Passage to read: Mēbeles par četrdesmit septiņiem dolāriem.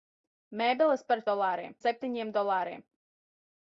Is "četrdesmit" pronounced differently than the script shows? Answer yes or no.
yes